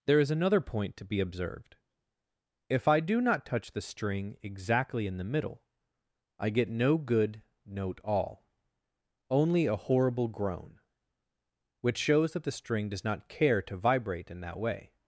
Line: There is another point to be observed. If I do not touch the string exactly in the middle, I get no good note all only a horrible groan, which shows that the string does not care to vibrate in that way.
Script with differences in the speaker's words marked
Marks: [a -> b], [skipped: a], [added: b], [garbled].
There is another point to be observed. If I do not touch the string exactly in the middle, I get no good note all only a horrible groan, which shows that the string does not care to vibrate in that way.